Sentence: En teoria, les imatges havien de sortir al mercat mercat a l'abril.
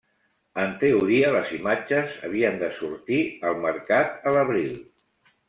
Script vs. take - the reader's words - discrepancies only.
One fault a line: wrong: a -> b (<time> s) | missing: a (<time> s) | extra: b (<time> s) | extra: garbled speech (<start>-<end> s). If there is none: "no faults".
missing: mercat (4.3 s)